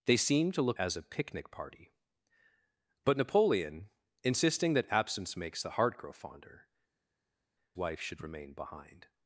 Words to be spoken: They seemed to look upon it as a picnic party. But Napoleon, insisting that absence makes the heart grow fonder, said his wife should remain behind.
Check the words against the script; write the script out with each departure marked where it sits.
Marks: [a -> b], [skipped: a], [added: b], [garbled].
They seemed to look [skipped: upon it] as a picnic party. But Napoleon, insisting that absence makes the heart grow fonder, [skipped: said his] wife should remain behind.